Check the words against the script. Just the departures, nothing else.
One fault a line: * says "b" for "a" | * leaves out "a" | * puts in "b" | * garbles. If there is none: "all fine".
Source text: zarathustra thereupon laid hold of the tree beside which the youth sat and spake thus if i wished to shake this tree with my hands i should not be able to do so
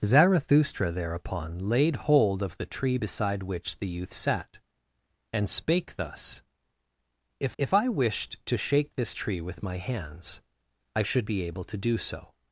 * puts in "if"
* leaves out "not"